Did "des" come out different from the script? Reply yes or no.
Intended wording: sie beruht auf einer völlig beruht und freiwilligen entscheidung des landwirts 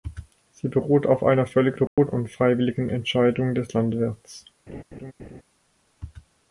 no